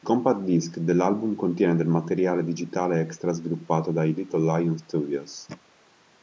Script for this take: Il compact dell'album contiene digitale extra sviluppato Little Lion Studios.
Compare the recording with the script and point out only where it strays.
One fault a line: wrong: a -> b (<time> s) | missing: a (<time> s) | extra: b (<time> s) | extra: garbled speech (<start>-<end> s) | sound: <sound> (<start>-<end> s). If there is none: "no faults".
extra: disc (0.4 s)
extra: del materiale (1.8 s)
extra: dai (3.9 s)